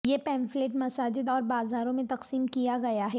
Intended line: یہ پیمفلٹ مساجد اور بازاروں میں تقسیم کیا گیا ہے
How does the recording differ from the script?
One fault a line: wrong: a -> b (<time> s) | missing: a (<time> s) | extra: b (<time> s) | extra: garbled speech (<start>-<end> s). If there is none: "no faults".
no faults